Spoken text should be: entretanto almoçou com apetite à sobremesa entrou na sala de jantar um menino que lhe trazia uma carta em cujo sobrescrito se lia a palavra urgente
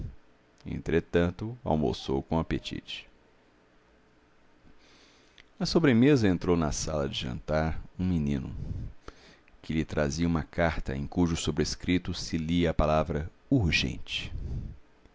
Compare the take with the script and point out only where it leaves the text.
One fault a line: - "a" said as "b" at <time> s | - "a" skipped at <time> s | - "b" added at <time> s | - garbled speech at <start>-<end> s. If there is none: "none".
none